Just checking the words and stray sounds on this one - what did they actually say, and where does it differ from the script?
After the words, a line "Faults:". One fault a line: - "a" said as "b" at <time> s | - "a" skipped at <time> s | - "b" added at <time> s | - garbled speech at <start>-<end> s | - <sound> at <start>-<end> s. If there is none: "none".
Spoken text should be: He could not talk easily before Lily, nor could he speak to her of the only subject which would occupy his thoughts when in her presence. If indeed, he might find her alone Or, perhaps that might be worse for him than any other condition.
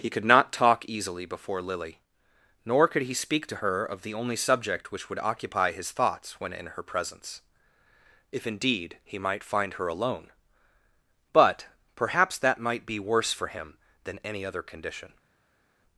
He could not talk easily before Lily, nor could he speak to her of the only subject which would occupy his thoughts when in her presence. If indeed, he might find her alone But, perhaps that might be worse for him than any other condition.
Faults:
- "Or" said as "But" at 11.3 s